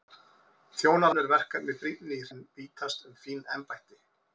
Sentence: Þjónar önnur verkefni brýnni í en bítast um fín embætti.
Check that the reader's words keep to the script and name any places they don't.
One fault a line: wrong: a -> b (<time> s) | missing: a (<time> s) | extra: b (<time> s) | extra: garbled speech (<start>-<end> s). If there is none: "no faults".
no faults